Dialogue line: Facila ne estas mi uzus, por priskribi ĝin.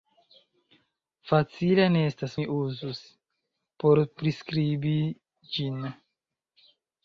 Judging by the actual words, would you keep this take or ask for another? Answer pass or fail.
pass